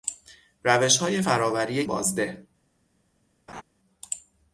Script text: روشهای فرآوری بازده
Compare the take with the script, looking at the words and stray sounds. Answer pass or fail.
fail